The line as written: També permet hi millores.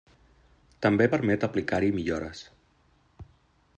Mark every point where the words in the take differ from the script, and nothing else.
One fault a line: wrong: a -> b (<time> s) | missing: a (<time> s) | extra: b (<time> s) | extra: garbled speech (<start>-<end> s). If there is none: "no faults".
extra: aplicar (1.5 s)